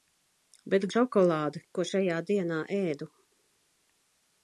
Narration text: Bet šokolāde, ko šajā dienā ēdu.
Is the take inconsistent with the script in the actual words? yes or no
no